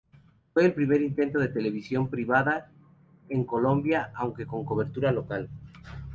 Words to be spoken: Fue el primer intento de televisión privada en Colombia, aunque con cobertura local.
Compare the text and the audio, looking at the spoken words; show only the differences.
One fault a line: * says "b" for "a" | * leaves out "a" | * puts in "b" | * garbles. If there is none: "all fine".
all fine